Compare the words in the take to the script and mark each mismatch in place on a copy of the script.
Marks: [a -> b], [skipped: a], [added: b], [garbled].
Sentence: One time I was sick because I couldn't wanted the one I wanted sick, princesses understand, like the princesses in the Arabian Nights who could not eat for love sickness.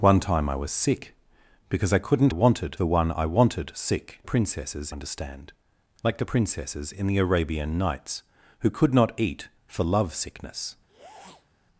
One time I was sick because I couldn't wanted the one I wanted sick, princesses understand, like the princesses in the Arabian Nights who could not eat for love sickness.